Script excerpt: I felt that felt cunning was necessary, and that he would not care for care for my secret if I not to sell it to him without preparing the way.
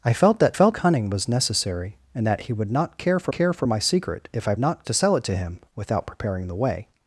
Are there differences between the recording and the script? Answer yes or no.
no